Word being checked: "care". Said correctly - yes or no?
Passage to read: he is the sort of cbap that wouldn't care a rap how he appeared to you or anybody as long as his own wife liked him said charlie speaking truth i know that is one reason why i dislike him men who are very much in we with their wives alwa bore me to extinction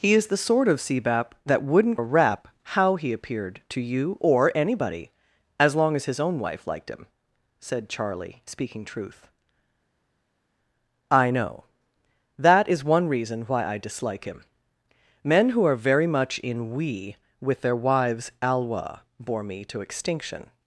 no